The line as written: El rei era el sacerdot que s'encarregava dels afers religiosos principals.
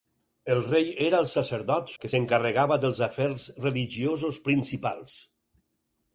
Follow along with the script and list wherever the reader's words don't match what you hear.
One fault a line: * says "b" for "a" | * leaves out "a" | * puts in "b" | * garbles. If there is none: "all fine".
all fine